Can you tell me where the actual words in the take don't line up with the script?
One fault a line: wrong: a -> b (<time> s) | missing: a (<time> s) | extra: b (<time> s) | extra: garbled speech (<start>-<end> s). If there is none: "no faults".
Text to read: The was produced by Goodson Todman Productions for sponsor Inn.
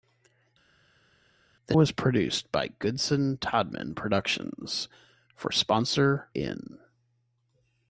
no faults